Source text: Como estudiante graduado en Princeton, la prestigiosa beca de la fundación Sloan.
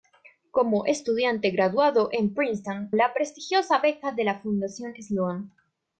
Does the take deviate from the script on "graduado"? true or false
false